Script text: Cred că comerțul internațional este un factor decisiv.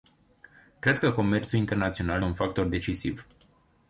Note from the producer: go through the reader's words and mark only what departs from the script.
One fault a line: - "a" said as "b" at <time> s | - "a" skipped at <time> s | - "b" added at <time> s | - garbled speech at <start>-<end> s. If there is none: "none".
- "este" skipped at 2.2 s